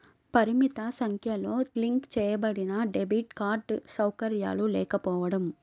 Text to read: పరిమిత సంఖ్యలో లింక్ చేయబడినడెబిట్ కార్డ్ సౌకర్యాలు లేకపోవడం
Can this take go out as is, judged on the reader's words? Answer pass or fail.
pass